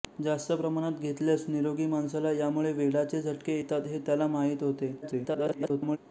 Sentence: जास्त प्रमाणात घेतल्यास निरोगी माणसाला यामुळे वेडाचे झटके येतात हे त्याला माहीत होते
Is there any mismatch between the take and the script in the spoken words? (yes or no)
yes